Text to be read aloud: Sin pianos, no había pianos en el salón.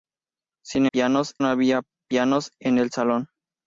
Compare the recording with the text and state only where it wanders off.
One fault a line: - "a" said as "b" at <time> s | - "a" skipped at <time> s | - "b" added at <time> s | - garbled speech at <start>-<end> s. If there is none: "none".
none